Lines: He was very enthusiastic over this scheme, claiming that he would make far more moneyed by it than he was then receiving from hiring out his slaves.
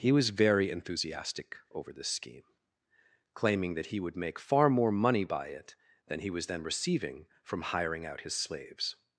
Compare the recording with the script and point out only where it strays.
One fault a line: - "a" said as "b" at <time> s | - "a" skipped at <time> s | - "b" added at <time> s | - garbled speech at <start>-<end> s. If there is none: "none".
- "moneyed" said as "money" at 4.9 s